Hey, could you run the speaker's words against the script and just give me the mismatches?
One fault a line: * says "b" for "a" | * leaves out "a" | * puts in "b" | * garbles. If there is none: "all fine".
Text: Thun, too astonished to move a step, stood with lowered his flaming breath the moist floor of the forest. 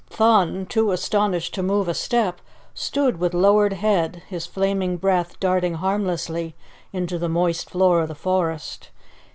* puts in "head"
* puts in "darting harmlessly into"